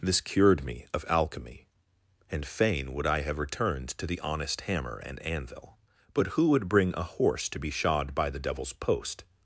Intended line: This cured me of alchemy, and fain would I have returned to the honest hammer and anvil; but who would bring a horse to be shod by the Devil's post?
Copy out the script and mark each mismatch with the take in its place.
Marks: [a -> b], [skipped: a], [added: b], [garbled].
This cured me of alchemy, and fain would I have returned to the honest hammer and anvil; but who would bring a horse to be shod by the Devil's post?